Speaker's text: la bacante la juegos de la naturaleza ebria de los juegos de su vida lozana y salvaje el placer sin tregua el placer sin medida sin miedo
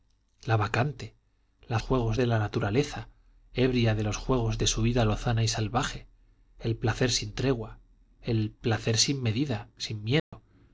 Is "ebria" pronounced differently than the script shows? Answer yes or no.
no